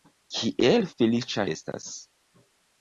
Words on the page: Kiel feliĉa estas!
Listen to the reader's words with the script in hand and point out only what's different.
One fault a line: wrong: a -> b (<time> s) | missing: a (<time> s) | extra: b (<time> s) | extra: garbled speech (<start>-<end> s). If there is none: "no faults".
no faults